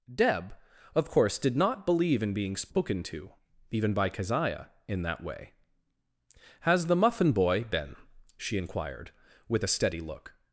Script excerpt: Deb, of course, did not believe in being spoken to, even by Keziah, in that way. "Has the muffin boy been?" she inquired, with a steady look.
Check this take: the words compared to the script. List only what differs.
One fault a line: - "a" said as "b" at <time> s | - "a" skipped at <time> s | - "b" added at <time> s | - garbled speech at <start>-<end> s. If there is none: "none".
none